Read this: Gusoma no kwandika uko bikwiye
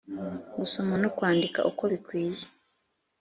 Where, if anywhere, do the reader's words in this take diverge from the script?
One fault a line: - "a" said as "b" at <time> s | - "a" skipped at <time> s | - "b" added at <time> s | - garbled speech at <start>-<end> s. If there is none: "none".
none